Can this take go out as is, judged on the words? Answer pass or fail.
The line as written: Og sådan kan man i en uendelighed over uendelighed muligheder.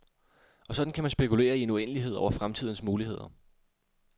fail